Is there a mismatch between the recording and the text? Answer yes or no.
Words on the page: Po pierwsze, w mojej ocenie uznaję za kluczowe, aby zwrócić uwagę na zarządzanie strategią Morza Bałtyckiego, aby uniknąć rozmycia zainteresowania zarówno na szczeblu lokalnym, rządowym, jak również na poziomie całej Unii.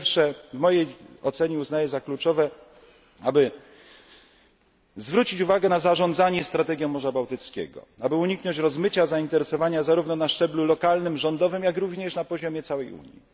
no